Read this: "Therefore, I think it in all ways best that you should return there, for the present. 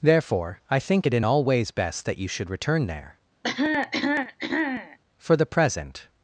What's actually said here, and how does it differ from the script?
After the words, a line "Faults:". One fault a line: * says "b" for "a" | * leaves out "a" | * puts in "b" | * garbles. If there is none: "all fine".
"Therefore, I think it in all ways best that you should return there, for the present.
Faults:
all fine